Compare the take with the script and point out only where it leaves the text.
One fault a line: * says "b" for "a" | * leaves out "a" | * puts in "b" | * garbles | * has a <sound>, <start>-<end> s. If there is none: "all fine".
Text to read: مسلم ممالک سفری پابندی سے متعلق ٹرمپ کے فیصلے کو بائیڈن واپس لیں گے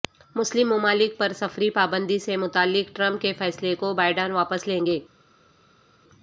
* puts in "پر"